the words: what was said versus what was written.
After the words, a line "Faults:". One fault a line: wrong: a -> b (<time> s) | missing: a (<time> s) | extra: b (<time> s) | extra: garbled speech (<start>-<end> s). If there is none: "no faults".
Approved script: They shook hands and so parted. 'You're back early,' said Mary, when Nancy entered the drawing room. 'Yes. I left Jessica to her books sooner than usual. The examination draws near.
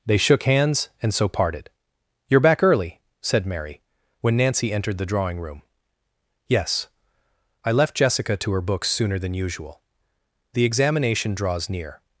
They shook hands and so parted. 'You're back early,' said Mary, when Nancy entered the drawing room. 'Yes. I left Jessica to her books sooner than usual. The examination draws near.
Faults:
no faults